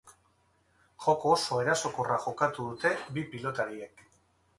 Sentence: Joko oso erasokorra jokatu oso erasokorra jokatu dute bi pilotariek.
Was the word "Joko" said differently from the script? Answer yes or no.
no